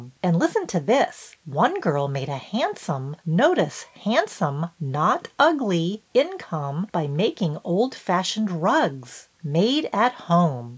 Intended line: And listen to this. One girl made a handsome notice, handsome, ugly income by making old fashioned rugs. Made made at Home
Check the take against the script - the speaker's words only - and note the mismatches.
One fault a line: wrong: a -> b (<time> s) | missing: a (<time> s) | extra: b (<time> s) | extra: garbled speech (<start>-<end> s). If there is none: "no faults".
extra: not (4.8 s)
missing: made (9.9 s)